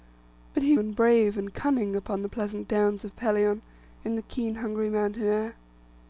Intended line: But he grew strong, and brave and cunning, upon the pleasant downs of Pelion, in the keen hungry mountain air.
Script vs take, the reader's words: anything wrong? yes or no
yes